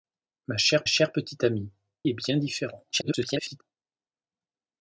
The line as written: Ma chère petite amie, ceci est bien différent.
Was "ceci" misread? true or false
true